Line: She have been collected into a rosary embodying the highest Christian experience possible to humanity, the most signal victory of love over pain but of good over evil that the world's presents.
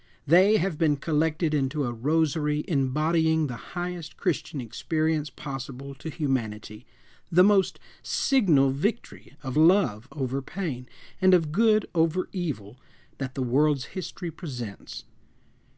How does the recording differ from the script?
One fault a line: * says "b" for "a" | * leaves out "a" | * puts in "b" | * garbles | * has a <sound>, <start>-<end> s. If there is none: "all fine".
* says "They" for "She"
* says "and" for "but"
* puts in "history"